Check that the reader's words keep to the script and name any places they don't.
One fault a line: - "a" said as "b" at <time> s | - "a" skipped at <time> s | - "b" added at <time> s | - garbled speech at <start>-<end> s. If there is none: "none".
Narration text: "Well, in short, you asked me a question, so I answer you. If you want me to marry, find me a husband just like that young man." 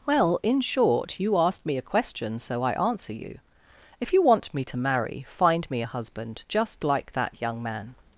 none